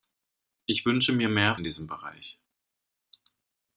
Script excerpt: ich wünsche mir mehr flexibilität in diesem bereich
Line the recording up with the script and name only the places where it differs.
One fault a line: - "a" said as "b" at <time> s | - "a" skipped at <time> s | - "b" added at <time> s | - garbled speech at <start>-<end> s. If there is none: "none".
- "flexibilität" skipped at 1.6 s